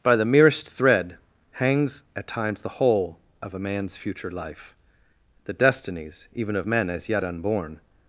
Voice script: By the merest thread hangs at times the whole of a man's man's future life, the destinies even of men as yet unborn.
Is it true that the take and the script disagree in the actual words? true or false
true